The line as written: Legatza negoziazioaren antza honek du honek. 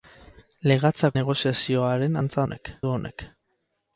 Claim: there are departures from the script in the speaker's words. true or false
false